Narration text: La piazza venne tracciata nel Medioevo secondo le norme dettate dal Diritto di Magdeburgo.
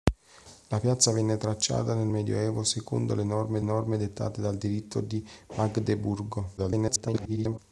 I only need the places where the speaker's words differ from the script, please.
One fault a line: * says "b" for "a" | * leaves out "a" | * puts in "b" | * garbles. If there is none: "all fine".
* puts in "norme"
* garbles